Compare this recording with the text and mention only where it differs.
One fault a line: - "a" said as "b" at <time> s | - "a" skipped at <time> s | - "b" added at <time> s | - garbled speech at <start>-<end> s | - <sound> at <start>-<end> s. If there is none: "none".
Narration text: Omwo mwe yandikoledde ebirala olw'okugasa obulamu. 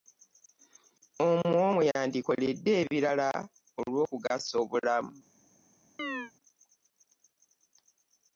- chirp at 6.0-6.3 s